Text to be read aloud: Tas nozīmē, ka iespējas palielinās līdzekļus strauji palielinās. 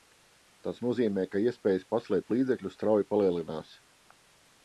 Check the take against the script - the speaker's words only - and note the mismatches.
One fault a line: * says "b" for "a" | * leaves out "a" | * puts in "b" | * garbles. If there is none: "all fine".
* says "paslēpt" for "palielinās"